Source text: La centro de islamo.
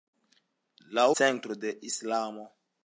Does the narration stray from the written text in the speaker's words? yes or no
no